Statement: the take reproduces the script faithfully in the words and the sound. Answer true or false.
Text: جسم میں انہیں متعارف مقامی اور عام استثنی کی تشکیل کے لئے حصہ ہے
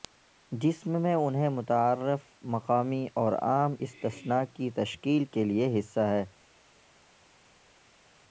true